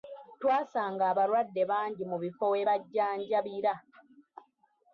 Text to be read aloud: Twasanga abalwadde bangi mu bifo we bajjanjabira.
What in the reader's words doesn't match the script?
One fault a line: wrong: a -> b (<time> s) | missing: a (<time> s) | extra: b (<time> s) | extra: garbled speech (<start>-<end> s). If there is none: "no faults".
no faults